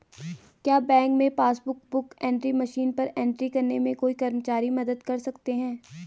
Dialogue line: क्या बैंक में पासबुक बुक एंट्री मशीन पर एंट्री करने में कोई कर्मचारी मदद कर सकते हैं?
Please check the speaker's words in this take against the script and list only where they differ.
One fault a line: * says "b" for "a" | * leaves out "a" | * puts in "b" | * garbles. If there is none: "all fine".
all fine